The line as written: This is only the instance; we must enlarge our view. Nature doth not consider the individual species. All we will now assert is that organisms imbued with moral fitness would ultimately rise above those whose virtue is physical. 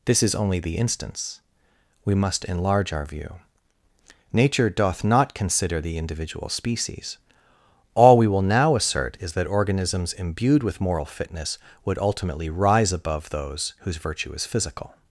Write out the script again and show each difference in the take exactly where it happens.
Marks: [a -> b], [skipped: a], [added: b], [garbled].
This is only the instance; we must enlarge our view. Nature doth not consider the individual species. All we will now assert is that organisms imbued with moral fitness would ultimately rise above those whose virtue is physical.